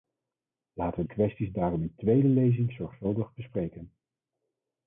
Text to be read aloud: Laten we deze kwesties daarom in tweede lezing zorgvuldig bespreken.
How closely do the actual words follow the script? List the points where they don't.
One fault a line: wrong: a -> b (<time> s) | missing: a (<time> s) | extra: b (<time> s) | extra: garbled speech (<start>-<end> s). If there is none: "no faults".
missing: deze (1.0 s)